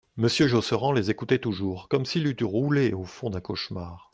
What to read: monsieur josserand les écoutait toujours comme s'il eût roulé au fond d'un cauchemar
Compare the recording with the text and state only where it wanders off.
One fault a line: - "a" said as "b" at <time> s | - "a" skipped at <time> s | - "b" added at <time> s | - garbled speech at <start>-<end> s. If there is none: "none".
none